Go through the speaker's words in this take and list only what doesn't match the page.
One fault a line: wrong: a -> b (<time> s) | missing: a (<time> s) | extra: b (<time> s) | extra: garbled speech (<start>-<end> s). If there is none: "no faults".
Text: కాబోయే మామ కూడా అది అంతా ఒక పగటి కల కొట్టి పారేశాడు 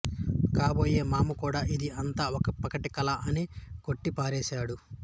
wrong: అది -> ఇది (1.8 s)
extra: అని (3.3 s)